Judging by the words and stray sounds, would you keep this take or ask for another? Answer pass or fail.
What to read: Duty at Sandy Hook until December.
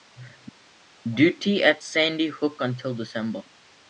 pass